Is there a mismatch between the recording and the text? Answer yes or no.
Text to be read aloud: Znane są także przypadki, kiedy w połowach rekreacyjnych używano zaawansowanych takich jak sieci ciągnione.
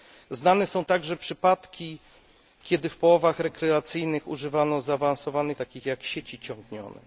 no